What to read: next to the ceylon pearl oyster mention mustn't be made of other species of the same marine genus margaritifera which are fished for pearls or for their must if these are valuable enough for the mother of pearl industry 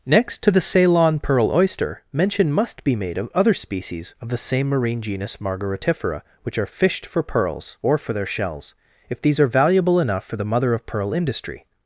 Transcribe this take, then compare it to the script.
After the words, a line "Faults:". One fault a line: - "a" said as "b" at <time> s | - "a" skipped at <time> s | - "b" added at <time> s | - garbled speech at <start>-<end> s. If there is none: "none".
next to the ceylon pearl oyster mention must be made of other species of the same marine genus margaritifera which are fished for pearls or for their shells if these are valuable enough for the mother of pearl industry
Faults:
- "mustn't" said as "must" at 2.5 s
- "must" said as "shells" at 8.3 s